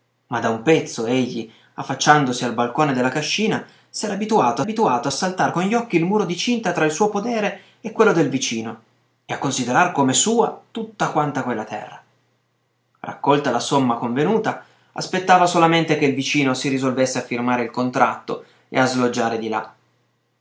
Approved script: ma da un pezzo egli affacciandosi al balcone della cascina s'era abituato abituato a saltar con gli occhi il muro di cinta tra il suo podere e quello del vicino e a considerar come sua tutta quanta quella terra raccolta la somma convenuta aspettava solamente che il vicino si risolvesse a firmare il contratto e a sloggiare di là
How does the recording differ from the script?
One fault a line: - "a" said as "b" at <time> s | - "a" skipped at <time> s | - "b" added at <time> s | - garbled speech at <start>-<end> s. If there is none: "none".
none